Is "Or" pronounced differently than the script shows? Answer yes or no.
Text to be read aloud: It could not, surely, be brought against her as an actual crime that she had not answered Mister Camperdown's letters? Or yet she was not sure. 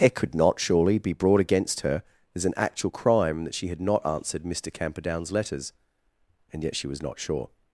yes